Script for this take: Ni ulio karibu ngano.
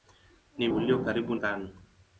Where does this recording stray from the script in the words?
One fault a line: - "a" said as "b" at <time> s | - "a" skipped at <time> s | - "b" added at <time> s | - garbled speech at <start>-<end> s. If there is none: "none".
none